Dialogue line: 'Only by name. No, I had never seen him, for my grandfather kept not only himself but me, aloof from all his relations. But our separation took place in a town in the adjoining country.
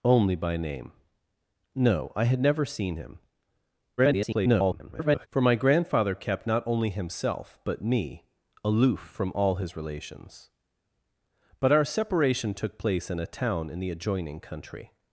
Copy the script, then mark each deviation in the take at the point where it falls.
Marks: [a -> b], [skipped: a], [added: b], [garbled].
'Only by name. No, I had never seen him, [garbled] for my grandfather kept not only himself but me, aloof from all his relations. But our separation took place in a town in the adjoining country.